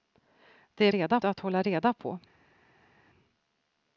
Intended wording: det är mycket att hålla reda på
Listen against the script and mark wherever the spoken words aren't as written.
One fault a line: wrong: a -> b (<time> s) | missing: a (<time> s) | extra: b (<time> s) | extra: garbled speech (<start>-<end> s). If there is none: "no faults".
wrong: mycket -> reda (0.9 s)